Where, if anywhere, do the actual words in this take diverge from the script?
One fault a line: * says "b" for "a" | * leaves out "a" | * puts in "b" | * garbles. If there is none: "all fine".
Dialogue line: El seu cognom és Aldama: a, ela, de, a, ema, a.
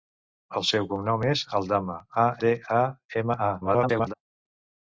* leaves out "ela"
* garbles